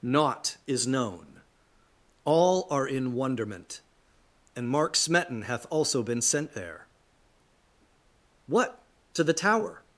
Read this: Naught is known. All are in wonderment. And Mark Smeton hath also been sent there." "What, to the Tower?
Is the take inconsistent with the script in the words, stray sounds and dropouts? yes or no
no